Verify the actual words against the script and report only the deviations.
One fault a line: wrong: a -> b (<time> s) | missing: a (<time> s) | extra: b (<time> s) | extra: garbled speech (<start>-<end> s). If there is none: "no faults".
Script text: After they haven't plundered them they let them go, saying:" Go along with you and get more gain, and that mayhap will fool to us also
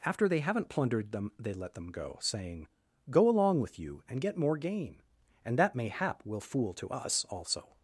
no faults